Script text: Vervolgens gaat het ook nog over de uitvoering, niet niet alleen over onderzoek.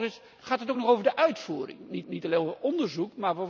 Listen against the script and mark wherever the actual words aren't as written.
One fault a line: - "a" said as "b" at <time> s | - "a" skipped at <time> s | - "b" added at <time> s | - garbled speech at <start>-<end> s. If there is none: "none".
none